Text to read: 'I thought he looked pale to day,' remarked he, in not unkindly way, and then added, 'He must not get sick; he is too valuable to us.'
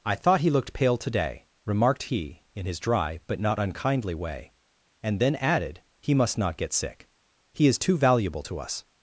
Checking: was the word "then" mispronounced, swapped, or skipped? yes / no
no